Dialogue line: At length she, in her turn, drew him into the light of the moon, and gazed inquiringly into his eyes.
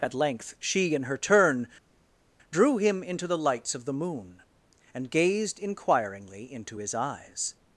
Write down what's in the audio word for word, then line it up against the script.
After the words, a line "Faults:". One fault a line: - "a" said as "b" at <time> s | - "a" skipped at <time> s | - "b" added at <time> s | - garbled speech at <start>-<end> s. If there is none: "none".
At length she, in her turn, drew him into the lights of the moon, and gazed inquiringly into his eyes.
Faults:
- "light" said as "lights" at 3.4 s